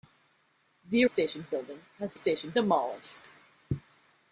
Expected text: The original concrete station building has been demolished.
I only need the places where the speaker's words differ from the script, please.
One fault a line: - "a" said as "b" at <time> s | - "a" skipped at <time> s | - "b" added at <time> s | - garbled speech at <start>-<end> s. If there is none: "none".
- "original concrete" skipped at 1.1 s
- "been" said as "station" at 2.2 s